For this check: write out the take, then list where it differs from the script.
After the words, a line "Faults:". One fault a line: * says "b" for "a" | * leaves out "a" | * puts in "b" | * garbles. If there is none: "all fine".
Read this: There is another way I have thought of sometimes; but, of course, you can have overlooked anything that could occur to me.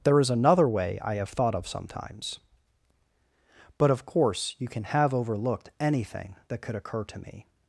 There is another way I have thought of sometimes; but, of course, you can have overlooked anything that could occur to me.
Faults:
all fine